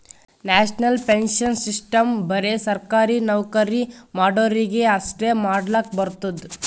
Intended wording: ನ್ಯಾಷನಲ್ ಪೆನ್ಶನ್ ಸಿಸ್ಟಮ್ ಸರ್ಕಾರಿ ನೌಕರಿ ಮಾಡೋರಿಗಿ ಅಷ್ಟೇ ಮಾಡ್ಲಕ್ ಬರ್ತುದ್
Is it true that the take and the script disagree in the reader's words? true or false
true